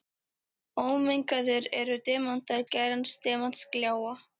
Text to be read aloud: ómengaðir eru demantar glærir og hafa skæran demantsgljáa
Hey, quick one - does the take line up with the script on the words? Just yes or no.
no